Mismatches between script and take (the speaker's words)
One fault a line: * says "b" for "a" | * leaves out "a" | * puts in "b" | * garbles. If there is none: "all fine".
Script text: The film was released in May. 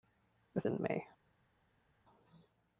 * leaves out "film was released"